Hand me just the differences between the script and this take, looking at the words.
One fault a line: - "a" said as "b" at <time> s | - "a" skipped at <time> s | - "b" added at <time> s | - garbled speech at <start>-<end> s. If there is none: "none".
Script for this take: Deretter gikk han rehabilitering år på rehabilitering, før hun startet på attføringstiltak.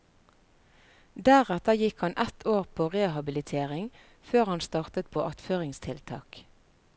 - "rehabilitering" said as "ett" at 2.2 s
- "hun" said as "han" at 4.5 s